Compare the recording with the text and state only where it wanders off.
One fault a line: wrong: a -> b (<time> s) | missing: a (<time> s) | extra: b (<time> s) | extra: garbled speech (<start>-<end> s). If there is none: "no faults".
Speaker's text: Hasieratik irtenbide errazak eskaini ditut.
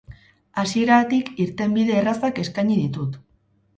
no faults